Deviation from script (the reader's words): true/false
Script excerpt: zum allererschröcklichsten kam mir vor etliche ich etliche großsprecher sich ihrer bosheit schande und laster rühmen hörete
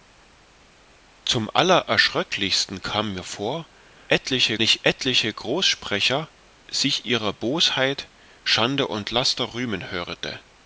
false